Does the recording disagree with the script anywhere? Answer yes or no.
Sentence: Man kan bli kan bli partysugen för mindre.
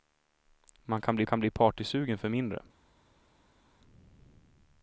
no